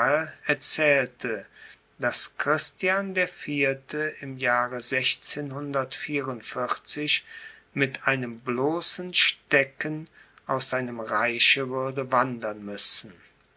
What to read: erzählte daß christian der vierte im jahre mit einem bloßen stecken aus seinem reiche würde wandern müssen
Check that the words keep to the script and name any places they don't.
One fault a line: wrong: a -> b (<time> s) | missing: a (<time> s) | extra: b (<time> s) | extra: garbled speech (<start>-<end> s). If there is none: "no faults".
no faults